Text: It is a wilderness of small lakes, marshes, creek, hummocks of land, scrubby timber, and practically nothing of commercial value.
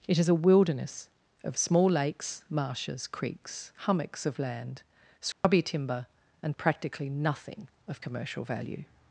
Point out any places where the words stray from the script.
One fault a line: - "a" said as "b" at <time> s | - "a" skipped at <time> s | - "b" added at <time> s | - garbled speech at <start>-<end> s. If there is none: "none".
- "creek" said as "creeks" at 3.1 s